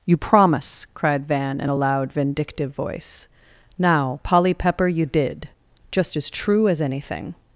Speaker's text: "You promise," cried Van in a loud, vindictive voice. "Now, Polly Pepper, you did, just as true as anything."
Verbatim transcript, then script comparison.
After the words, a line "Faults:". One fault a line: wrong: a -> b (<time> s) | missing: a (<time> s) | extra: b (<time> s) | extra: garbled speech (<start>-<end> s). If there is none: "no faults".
"You promise," cried Van in a loud, vindictive voice. "Now, Polly Pepper, you did, just as true as anything."
Faults:
no faults